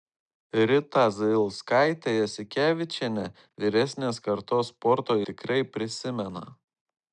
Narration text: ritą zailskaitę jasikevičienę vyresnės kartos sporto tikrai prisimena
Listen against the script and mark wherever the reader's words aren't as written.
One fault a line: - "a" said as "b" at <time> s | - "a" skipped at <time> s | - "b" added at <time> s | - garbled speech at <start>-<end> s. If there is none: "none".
none